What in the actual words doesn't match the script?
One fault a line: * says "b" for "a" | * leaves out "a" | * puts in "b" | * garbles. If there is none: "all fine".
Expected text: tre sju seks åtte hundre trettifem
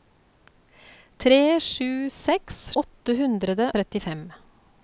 all fine